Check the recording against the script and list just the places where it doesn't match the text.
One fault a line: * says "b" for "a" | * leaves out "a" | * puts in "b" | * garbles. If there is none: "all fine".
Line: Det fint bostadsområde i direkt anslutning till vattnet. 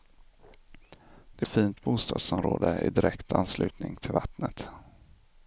all fine